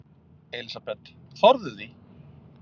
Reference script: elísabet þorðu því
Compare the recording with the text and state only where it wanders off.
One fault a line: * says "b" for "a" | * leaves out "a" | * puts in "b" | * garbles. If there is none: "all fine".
all fine